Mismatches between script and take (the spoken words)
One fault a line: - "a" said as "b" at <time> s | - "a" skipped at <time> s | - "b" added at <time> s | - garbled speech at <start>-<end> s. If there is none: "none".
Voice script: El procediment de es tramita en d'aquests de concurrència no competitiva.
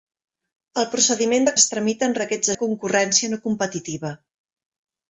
none